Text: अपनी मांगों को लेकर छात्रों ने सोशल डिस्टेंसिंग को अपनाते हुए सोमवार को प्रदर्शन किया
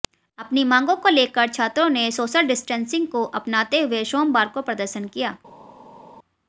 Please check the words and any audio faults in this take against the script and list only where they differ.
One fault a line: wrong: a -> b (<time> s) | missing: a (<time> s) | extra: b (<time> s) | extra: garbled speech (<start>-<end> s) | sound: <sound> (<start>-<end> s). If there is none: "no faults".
no faults